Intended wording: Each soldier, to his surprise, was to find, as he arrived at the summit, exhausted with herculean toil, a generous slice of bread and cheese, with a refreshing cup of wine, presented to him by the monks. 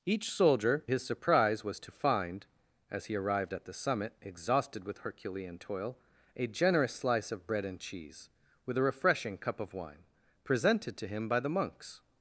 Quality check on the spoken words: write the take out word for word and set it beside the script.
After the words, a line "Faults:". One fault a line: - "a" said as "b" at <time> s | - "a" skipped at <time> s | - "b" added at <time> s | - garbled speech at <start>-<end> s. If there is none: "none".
Each soldier, his surprise, was to find, as he arrived at the summit, exhausted with herculean toil, a generous slice of bread and cheese, with a refreshing cup of wine, presented to him by the monks.
Faults:
- "to" skipped at 0.9 s